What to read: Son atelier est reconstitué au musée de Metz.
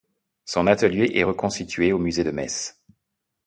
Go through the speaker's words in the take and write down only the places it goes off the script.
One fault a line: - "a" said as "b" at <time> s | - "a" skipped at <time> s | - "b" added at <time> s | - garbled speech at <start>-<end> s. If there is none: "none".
none